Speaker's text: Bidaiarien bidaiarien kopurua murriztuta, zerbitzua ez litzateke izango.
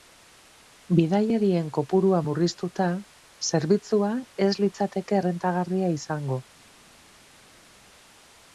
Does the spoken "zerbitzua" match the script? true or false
true